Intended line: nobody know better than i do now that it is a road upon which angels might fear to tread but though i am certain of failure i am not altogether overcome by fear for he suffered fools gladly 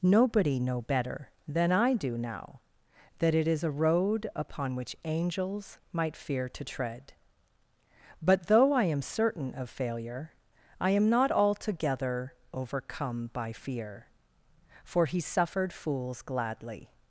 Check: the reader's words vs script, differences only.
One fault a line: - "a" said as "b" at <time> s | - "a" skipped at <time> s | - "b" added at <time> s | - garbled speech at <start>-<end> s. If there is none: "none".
none